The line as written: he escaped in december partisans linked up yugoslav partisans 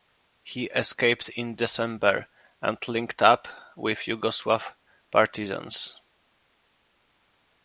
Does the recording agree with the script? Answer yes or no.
no